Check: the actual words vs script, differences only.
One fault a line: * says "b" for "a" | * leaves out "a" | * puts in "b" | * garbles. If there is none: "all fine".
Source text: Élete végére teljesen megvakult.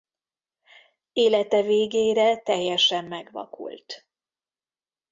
all fine